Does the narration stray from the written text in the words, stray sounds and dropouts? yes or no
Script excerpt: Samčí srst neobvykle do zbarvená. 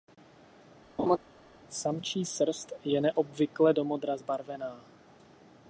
yes